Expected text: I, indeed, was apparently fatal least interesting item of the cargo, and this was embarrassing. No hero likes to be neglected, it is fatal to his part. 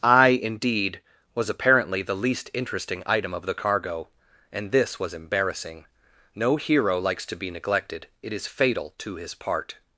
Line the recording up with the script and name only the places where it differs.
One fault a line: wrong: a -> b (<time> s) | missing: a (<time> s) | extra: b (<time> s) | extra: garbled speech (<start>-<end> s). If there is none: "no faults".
wrong: fatal -> the (2.0 s)